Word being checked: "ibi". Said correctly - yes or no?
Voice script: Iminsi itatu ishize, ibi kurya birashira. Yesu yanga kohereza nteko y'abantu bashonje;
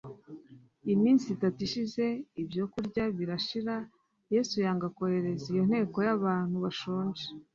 no